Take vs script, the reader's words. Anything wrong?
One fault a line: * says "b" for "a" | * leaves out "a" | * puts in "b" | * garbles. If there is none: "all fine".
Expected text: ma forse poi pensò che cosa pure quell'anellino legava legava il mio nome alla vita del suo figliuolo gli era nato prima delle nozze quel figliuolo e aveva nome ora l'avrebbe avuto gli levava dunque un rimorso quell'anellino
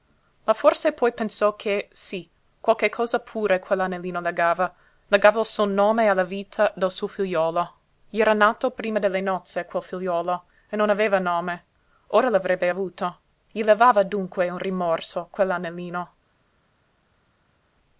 * puts in "sí qualche"
* says "suo" for "mio"
* puts in "non"